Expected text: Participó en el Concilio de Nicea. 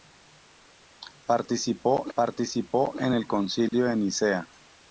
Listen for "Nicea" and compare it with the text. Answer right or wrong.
right